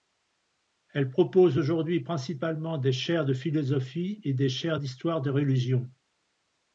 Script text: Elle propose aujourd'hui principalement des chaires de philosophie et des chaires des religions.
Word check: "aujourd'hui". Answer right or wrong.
right